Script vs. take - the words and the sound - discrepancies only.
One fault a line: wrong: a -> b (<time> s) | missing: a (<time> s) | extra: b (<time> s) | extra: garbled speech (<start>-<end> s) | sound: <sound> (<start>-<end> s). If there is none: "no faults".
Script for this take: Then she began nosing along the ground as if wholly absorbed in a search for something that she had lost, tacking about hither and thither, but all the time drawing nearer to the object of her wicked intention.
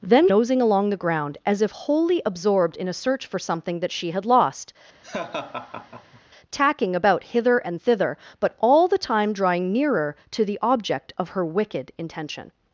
missing: she began (0.3 s)
sound: laugh (5.0-6.2 s)